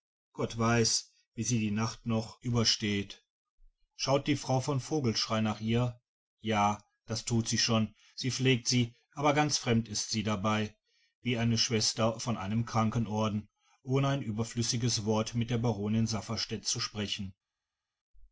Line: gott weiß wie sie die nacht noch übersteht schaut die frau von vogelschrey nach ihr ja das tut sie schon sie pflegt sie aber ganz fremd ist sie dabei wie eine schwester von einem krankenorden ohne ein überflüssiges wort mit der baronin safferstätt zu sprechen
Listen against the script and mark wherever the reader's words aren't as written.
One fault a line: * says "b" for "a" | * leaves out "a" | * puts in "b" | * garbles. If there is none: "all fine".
all fine